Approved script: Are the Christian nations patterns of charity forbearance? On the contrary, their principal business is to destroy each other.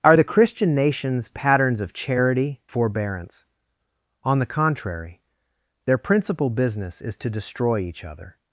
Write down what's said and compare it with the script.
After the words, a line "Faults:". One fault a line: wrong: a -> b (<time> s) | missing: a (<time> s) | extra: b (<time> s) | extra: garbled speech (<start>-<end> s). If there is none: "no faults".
Are the Christian nations patterns of charity forbearance? On the contrary, their principal business is to destroy each other.
Faults:
no faults